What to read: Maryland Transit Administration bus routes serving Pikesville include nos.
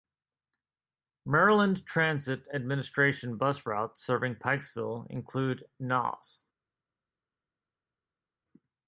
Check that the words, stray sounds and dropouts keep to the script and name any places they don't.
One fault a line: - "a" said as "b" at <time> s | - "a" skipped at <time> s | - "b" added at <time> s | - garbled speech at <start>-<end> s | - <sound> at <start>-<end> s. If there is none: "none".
none